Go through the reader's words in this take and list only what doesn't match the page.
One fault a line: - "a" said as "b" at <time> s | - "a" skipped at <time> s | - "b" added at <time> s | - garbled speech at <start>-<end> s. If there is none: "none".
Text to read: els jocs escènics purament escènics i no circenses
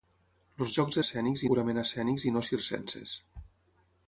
none